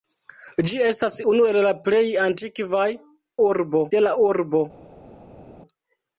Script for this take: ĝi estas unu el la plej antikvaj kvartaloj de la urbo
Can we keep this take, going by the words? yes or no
no